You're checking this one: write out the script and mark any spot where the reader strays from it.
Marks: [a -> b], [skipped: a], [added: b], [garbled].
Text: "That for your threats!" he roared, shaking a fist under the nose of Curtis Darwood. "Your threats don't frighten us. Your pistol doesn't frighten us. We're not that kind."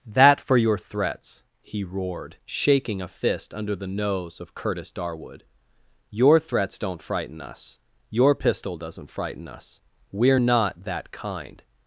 "That for your threats!" he roared, shaking a fist under the nose of Curtis Darwood. "Your threats don't frighten us. Your pistol doesn't frighten us. We're not that kind."